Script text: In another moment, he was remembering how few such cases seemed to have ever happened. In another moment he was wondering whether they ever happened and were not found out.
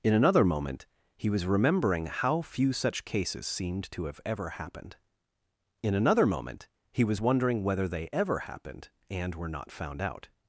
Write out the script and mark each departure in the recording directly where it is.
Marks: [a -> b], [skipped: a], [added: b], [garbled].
In another moment, he was remembering how few such cases seemed to have ever happened. In another moment he was wondering whether they ever happened and were not found out.